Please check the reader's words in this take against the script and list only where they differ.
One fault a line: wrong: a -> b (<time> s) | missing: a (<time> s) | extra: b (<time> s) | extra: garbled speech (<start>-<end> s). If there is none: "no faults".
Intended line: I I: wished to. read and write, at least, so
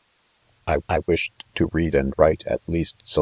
no faults